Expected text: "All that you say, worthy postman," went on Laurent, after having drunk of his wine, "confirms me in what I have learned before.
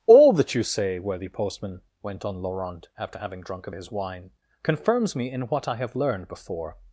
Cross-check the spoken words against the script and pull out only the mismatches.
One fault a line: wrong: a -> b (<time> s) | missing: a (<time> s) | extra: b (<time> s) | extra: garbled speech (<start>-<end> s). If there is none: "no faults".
no faults